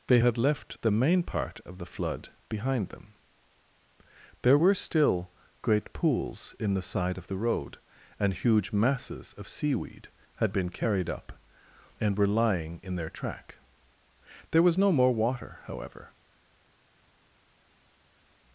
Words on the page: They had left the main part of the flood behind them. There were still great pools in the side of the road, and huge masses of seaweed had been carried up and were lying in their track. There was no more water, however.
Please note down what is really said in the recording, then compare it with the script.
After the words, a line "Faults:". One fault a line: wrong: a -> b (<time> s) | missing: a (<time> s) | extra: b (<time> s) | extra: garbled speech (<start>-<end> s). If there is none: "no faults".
They had left the main part of the flood behind them. There were still great pools in the side of the road, and huge masses of seaweed had been carried up and were lying in their track. There was no more water, however.
Faults:
no faults